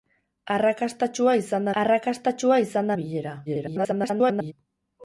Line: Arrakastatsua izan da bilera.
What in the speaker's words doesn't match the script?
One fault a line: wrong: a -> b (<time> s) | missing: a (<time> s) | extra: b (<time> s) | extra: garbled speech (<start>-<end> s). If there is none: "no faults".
extra: arrakastatsua izan (1.8 s)
extra: garbled speech (3.5-4.5 s)